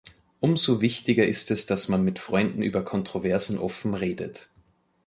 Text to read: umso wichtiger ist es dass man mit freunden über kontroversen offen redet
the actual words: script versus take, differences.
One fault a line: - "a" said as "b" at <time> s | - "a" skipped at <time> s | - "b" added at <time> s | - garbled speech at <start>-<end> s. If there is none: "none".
none